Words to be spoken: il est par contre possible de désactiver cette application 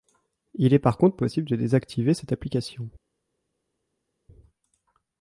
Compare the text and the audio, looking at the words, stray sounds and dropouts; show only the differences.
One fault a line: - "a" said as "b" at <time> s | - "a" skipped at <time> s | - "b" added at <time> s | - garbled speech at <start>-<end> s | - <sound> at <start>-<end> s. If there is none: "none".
none